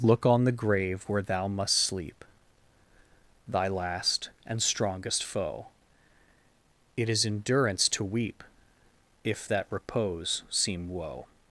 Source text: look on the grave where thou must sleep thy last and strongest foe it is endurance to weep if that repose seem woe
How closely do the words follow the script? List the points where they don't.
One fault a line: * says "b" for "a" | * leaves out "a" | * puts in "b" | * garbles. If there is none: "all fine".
all fine